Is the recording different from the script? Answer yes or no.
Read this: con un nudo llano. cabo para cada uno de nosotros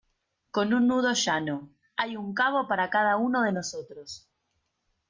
yes